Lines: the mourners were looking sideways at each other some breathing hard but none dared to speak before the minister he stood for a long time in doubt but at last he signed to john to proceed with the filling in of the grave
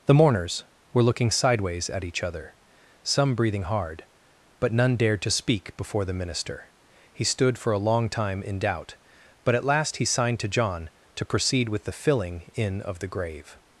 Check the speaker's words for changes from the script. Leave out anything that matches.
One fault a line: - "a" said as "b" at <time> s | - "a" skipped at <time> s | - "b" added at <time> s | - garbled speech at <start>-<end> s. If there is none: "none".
none